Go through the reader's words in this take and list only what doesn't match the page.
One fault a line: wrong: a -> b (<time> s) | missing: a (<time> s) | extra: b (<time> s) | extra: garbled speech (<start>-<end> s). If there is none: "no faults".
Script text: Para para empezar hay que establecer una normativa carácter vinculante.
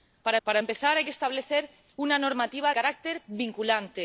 no faults